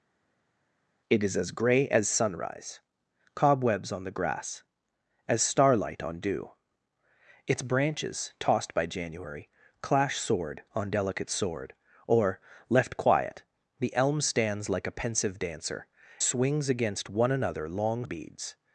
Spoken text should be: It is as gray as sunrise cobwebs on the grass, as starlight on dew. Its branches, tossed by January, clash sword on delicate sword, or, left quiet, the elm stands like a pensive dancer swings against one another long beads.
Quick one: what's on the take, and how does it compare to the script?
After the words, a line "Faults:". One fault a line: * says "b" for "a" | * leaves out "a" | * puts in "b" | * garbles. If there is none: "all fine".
It is as gray as sunrise cobwebs on the grass, as starlight on dew. Its branches, tossed by January, clash sword on delicate sword, or, left quiet, the elm stands like a pensive dancer swings against one another long beads.
Faults:
all fine